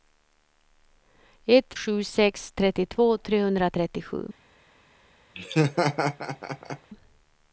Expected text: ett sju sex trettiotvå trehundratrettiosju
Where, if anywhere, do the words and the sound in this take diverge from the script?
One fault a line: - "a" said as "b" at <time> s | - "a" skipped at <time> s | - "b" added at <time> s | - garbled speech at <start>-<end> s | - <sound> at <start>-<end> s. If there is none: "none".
- laugh at 5.4-6.9 s